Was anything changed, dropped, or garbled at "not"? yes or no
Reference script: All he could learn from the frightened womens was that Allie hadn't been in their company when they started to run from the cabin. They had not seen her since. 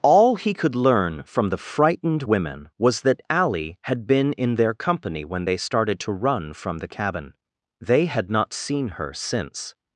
no